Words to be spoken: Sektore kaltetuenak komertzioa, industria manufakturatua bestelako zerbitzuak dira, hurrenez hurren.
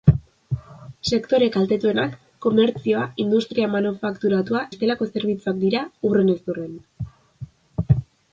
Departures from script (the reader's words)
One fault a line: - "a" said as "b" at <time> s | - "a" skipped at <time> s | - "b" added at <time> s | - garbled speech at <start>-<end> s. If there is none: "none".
none